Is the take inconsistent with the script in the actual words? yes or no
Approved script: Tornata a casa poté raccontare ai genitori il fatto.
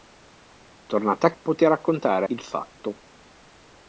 yes